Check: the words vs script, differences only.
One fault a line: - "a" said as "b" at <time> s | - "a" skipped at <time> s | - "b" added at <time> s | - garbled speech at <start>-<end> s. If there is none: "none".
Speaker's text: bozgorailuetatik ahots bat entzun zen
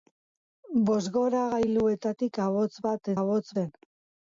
- "entzun" said as "ahots" at 3.2 s